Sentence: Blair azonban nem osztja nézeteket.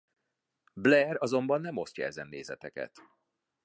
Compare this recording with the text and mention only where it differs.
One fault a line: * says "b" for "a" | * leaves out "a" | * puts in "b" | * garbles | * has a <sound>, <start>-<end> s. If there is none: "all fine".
* puts in "ezen"